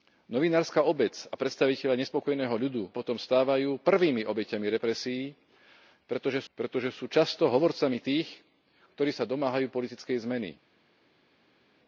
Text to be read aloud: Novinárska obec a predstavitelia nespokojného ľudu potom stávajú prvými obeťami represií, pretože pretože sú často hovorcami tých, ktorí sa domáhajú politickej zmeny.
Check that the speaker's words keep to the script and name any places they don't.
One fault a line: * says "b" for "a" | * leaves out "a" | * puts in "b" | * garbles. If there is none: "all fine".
all fine